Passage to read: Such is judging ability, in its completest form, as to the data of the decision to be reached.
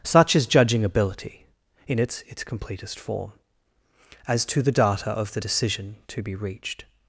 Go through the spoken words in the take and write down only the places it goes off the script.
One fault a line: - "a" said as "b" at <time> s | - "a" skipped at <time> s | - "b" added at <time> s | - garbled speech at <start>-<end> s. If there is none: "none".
- "its" added at 2.3 s